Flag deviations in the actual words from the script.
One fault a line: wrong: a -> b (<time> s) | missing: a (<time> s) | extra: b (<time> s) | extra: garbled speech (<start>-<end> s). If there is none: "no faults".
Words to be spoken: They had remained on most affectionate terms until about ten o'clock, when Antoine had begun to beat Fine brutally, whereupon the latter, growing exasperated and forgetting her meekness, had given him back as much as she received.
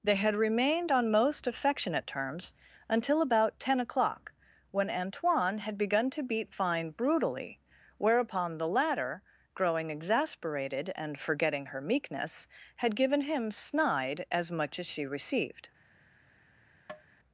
wrong: back -> snide (13.5 s)